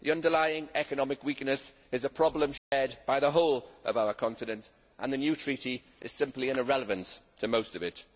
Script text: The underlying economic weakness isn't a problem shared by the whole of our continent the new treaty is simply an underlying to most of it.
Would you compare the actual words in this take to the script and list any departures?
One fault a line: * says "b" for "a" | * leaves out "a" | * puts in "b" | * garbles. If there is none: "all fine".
* says "is" for "isn't"
* puts in "and"
* says "irrelevance" for "underlying"